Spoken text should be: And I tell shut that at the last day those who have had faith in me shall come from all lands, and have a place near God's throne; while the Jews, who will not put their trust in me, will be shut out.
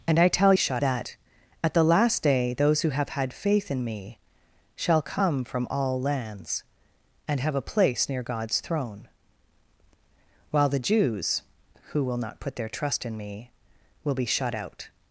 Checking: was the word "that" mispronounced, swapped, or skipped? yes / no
no